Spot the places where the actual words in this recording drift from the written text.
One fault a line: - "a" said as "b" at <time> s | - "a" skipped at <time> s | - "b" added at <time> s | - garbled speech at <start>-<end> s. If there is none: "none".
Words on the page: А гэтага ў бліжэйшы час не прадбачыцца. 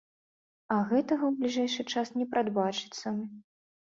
none